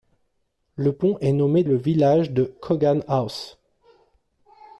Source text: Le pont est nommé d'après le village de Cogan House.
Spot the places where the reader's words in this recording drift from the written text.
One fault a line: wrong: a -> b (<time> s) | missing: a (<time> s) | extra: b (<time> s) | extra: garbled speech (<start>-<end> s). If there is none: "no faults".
missing: d'après (1.6 s)